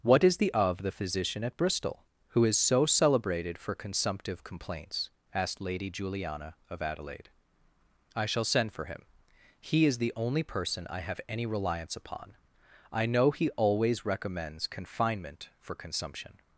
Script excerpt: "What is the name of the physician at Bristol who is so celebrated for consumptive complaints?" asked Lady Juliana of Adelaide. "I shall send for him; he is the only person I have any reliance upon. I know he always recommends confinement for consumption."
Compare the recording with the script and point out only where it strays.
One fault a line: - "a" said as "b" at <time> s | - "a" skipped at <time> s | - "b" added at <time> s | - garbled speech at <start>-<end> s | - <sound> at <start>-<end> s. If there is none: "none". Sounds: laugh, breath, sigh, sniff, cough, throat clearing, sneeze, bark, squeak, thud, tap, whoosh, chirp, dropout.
- "name" skipped at 0.5 s